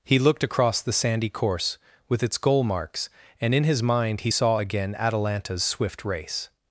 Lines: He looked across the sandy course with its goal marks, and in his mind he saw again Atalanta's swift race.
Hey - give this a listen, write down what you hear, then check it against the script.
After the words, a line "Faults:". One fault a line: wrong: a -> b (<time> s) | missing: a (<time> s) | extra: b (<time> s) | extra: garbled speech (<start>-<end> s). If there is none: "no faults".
He looked across the sandy course with its goal marks, and in his mind he saw again Atalanta's swift race.
Faults:
no faults